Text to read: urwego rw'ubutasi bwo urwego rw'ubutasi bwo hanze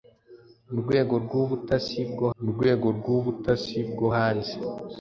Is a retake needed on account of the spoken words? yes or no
no